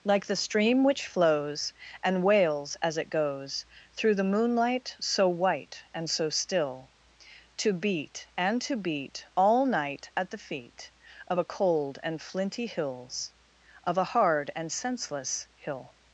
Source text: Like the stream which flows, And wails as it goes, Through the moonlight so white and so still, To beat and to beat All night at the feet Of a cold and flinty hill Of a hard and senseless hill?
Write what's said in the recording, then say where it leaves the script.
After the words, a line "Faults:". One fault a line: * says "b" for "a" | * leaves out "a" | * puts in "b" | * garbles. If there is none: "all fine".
Like the stream which flows, And wails as it goes, Through the moonlight so white and so still, To beat and to beat All night at the feet Of a cold and flinty hills Of a hard and senseless hill?
Faults:
* says "hills" for "hill"